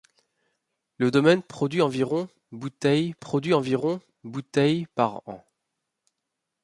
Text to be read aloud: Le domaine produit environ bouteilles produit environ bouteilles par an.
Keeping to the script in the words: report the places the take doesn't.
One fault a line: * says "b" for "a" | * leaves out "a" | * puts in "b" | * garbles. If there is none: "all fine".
all fine